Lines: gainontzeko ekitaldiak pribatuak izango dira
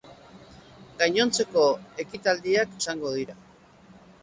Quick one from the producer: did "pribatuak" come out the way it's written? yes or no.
no